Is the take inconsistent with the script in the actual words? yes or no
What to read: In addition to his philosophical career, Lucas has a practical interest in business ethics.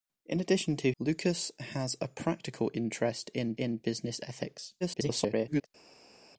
yes